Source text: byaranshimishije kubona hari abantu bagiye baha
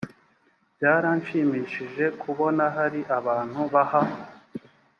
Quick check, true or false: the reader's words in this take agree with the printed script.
false